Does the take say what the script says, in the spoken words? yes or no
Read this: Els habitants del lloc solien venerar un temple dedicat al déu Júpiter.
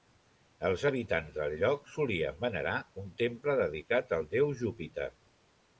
yes